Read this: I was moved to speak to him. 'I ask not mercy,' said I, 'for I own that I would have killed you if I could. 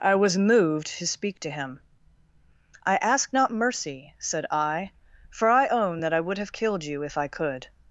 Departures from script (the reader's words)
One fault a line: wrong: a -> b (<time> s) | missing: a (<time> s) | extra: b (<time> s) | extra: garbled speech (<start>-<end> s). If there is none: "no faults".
no faults